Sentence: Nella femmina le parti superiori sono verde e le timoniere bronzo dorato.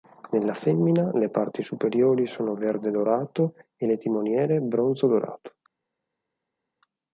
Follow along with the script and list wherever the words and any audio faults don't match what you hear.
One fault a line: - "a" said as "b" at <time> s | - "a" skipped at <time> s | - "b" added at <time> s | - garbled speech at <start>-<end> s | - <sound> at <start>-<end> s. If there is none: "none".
- "dorato" added at 2.9 s